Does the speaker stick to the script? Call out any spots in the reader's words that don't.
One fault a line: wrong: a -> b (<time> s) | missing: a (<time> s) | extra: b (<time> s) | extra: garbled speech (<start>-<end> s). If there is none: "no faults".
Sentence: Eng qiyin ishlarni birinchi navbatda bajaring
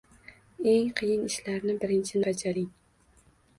missing: navbatda (2.2 s)